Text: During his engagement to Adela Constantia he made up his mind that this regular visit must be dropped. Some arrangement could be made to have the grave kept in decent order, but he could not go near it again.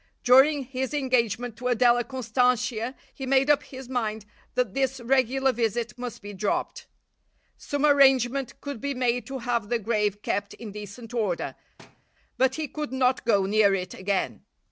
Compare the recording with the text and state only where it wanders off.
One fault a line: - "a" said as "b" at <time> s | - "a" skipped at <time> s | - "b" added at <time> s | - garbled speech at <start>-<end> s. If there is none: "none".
none